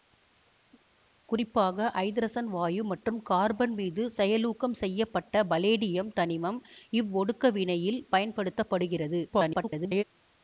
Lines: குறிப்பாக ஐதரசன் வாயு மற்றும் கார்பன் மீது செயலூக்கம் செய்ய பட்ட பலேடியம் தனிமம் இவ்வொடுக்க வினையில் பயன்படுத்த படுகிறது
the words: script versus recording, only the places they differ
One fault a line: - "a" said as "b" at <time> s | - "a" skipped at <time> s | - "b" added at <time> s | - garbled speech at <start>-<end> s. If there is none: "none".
- garbled speech at 9.3-10.0 s